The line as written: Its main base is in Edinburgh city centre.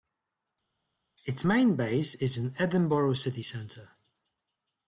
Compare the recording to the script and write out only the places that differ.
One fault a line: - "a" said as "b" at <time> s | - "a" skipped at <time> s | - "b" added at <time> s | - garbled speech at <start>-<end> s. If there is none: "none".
none